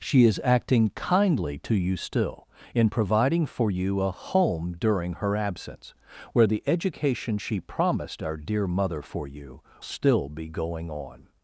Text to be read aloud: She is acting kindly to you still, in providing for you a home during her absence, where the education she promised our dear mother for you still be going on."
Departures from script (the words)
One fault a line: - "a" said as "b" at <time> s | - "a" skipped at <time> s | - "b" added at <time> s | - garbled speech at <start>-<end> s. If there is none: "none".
none